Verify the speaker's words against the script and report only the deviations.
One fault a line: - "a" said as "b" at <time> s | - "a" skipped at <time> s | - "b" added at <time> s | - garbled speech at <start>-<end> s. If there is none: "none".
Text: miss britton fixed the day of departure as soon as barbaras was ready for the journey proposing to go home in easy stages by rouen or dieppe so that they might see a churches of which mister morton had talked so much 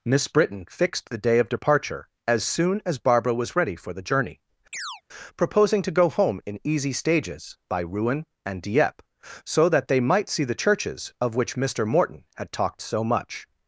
- "barbaras" said as "barbara" at 3.0 s
- "or" said as "and" at 8.5 s
- "a" said as "the" at 10.4 s